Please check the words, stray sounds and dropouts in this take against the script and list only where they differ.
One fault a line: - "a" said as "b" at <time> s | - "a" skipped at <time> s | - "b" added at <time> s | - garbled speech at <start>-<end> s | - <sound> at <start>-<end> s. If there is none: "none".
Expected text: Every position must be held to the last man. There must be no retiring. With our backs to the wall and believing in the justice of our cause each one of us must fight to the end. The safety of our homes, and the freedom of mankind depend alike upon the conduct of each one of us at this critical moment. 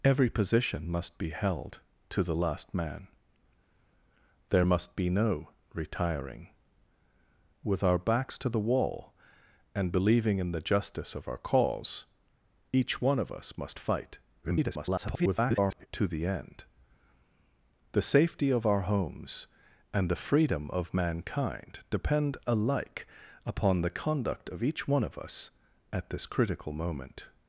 - garbled speech at 14.4-15.9 s